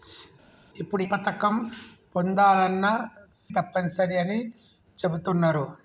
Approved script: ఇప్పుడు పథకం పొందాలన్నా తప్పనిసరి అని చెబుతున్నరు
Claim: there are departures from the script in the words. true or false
false